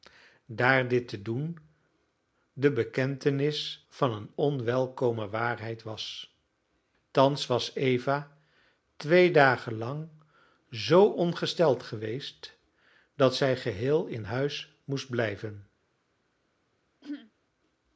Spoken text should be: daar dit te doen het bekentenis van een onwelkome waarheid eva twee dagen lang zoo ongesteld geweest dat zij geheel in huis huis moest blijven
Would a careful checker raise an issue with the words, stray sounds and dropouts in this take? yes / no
yes